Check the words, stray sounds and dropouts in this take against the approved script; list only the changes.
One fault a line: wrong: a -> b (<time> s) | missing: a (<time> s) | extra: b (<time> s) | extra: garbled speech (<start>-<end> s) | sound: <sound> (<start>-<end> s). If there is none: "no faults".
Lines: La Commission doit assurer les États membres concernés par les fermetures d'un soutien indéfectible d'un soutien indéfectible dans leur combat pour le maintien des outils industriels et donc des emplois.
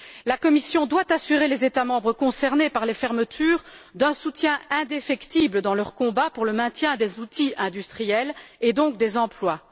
missing: d'un soutien indéfectible (5.6 s)